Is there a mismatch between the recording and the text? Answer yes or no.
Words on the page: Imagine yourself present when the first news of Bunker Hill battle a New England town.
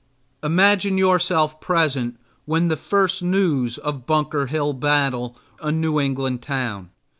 no